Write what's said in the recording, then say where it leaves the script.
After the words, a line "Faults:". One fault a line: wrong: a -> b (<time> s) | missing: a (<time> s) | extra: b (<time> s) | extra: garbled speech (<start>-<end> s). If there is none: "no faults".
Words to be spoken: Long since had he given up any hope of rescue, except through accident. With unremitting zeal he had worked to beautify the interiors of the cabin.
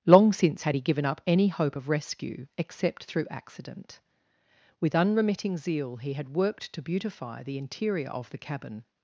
Long since had he given up any hope of rescue, except through accident. With unremitting zeal he had worked to beautify the interior of the cabin.
Faults:
wrong: interiors -> interior (7.6 s)